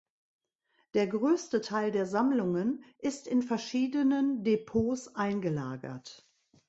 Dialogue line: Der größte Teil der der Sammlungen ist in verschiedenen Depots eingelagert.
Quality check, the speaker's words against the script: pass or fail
fail